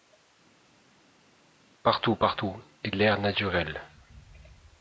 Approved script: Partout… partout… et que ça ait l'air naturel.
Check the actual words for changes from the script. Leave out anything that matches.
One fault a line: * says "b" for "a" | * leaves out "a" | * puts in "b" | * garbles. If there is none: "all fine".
* leaves out "que ça ait"